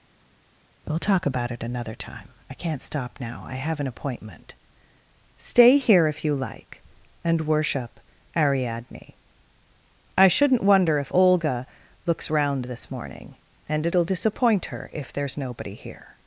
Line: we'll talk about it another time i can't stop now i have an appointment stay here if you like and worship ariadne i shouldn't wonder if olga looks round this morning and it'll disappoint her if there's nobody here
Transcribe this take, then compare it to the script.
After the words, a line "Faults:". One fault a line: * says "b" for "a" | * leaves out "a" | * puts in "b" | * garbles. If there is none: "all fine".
we'll talk about it another time i can't stop now i have an appointment stay here if you like and worship ariadne i shouldn't wonder if olga looks round this morning and it'll disappoint her if there's nobody here
Faults:
all fine